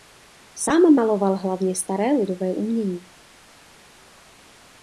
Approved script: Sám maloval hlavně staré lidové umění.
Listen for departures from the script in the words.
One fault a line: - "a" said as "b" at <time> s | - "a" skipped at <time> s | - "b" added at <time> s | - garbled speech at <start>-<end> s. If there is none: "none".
none